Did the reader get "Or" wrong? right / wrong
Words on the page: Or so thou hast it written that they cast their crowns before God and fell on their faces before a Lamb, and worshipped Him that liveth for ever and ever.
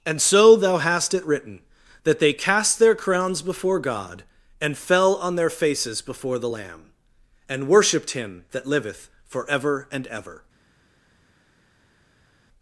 wrong